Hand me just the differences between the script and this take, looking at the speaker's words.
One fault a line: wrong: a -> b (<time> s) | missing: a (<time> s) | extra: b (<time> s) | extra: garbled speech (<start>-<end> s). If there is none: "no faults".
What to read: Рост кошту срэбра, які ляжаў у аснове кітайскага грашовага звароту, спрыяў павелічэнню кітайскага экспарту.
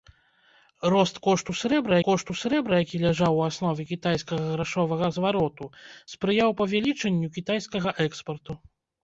extra: кошту срэбра (2.1 s)